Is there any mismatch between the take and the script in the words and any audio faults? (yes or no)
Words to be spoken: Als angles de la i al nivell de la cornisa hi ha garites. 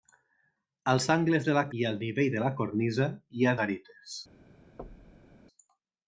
yes